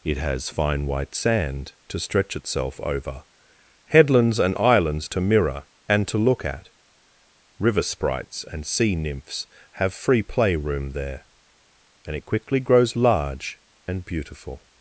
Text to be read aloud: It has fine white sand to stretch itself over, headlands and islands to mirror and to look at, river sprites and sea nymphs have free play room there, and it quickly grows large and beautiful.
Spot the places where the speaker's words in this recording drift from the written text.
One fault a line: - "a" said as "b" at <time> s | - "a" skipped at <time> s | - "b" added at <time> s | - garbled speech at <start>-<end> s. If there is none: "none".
none